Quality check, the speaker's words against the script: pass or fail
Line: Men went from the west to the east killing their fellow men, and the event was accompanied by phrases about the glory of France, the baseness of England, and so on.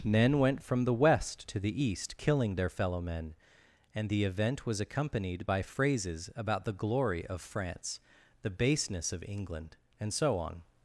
pass